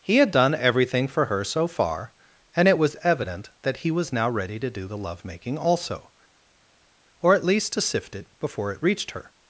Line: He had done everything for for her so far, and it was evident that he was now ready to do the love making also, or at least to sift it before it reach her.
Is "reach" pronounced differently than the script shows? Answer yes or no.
yes